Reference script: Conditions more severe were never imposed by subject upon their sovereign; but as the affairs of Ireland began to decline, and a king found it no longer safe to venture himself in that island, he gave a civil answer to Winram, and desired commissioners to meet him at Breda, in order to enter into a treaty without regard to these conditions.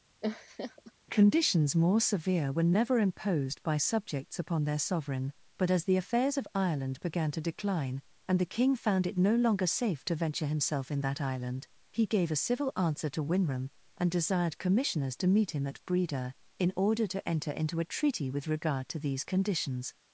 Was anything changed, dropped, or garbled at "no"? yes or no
no